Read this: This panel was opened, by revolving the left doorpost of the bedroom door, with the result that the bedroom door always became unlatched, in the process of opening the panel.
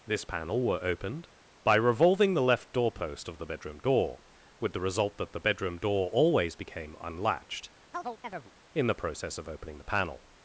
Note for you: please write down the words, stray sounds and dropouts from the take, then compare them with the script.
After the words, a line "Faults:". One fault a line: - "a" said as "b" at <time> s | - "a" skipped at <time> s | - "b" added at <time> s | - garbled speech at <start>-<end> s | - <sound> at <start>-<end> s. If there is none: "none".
This panel were opened, by revolving the left doorpost of the bedroom door, with the result that the bedroom door always became unlatched, in the process of opening the panel.
Faults:
- "was" said as "were" at 0.6 s
- chirp at 7.9-8.5 s